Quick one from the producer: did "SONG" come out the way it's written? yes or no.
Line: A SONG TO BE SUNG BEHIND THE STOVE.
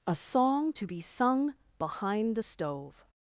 yes